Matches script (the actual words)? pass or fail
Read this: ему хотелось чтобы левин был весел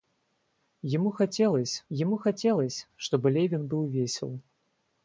fail